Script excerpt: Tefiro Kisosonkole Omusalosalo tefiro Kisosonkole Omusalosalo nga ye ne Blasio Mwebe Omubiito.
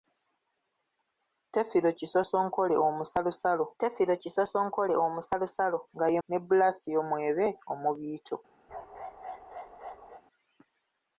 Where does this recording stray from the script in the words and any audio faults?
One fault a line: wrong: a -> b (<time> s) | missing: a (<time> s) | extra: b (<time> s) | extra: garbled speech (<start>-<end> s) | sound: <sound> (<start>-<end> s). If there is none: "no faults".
sound: bark (8.7-10.2 s)